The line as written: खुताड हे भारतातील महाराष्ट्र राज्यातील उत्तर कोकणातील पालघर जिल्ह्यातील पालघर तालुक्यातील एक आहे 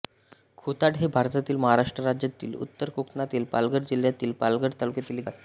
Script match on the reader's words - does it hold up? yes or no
yes